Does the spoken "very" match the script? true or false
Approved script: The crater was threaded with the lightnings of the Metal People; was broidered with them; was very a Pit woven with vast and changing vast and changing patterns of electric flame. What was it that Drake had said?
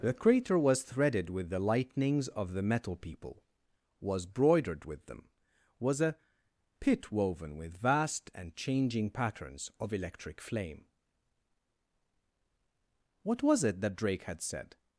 false